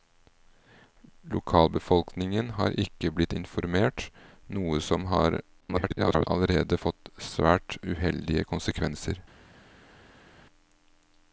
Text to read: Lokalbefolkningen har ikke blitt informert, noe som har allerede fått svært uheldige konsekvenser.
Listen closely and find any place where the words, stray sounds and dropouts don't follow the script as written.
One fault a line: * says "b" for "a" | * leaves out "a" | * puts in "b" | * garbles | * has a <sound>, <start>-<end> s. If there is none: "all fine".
* garbles